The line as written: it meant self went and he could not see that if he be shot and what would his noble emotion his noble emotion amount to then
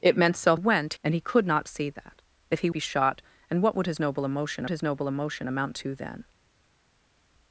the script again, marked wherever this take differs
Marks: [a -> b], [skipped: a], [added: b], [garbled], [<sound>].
it meant self went and he could not see that if he be shot and what would his noble emotion his noble emotion amount to then